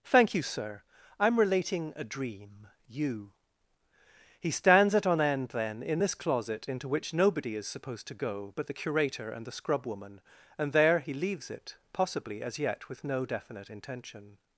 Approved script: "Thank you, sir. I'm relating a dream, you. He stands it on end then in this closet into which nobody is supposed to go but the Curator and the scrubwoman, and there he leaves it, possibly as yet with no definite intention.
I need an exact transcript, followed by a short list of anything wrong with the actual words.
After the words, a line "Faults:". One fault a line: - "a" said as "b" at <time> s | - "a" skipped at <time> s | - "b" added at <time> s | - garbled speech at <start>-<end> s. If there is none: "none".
"Thank you, sir. I'm relating a dream, you. He stands it on end then in this closet into which nobody is supposed to go but the Curator and the scrubwoman, and there he leaves it, possibly as yet with no definite intention.
Faults:
none